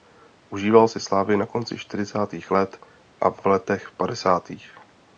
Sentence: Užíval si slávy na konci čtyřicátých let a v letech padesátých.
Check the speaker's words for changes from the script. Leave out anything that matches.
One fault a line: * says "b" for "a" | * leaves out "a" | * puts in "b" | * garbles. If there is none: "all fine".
* puts in "v"